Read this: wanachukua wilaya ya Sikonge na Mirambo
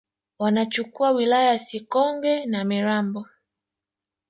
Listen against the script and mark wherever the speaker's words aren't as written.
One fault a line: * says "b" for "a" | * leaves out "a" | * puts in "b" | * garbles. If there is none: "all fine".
all fine